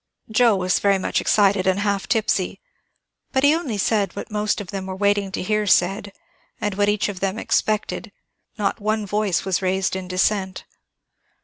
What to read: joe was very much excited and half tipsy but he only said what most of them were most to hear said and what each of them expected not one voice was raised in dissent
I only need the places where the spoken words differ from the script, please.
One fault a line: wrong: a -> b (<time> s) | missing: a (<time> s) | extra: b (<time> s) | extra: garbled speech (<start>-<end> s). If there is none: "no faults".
wrong: most -> waiting (4.9 s)